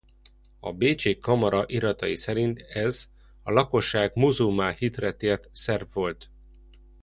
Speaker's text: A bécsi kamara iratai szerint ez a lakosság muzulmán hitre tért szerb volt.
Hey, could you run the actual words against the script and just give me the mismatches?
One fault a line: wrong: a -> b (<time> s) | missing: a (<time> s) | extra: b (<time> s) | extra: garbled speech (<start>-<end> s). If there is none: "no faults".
no faults